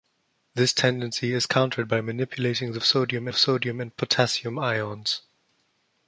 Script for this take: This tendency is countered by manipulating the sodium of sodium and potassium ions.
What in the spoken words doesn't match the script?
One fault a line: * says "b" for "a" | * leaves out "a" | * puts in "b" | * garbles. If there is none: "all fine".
all fine